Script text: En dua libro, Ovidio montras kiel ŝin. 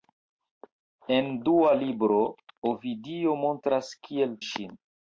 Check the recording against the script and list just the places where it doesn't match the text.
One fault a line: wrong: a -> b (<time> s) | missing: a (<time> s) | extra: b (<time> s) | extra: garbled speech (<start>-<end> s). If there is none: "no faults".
no faults